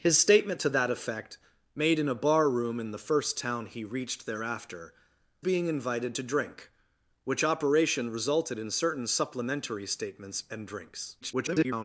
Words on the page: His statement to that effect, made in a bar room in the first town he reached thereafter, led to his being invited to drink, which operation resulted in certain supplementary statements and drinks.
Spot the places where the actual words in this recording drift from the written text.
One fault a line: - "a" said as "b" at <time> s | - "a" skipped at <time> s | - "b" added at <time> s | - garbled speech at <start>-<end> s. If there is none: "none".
- "led to his" skipped at 5.0 s
- garbled speech at 11.2-11.8 s